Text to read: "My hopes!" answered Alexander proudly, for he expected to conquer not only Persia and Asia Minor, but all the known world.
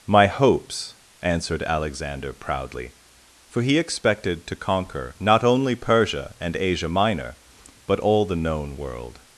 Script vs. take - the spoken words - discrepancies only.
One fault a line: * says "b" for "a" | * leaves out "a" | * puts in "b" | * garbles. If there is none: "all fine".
all fine